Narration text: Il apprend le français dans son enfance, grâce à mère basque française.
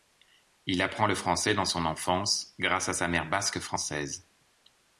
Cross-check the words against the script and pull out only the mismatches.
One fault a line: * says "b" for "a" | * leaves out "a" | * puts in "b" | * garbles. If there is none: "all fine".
* puts in "sa"